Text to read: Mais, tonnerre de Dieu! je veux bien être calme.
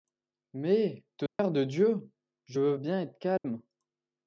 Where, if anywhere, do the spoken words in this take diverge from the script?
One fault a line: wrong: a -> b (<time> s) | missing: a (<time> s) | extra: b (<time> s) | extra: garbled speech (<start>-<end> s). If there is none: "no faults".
no faults